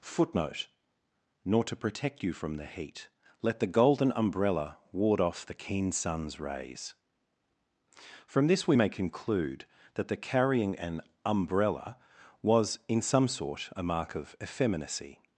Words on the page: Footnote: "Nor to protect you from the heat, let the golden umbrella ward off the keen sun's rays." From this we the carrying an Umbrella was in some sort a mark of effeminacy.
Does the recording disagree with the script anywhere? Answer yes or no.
yes